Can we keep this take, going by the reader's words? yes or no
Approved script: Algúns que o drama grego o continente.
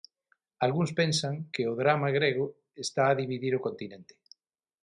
no